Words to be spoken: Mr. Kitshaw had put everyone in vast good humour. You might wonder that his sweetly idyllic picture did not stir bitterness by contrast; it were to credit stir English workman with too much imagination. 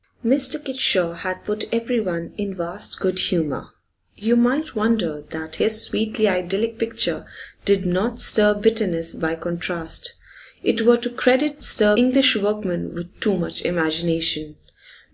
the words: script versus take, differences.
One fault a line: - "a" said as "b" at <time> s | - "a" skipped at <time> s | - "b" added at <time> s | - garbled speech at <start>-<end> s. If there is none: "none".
none